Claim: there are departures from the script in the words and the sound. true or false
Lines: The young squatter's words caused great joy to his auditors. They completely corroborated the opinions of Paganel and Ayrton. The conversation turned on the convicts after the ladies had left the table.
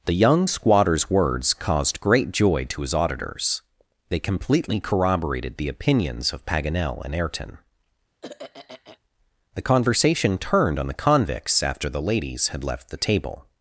true